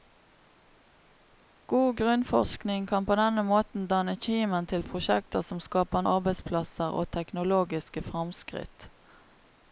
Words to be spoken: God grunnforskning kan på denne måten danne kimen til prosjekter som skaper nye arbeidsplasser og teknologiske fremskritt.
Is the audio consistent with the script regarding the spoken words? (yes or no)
no